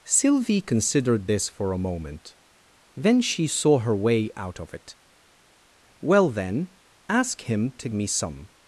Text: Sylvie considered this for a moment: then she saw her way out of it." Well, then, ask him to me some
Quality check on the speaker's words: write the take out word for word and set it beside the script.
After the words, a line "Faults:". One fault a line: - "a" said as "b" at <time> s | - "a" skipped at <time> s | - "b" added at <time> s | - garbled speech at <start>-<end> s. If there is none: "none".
Sylvie considered this for a moment: then she saw her way out of it." Well, then, ask him to me some
Faults:
none